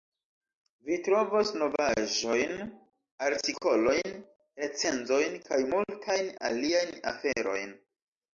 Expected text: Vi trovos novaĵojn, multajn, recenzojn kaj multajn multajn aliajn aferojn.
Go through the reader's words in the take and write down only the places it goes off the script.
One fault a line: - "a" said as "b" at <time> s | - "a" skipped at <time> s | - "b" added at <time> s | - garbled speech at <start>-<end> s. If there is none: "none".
- "multajn" said as "artikolojn" at 3.3 s
- "multajn" skipped at 6.3 s